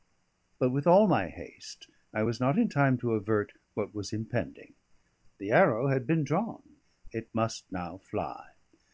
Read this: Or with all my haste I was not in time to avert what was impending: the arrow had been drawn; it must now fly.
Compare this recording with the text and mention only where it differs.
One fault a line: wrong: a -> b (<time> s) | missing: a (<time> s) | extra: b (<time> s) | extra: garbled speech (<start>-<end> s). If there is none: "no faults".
wrong: Or -> But (0.6 s)